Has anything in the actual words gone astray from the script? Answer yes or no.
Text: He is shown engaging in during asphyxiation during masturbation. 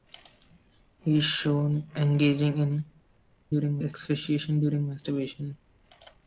no